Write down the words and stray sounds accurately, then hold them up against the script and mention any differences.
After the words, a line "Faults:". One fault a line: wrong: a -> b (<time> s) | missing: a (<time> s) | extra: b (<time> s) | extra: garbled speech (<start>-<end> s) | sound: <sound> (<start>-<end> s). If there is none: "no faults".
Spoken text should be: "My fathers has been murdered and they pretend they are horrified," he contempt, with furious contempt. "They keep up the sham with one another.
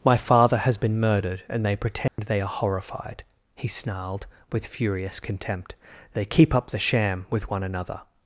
"My father has been murdered and they pretend they are horrified," he snarled, with furious contempt. "They keep up the sham with one another.
Faults:
wrong: fathers -> father (0.2 s)
sound: dropout (2.1-2.2 s)
wrong: contempt -> snarled (3.7 s)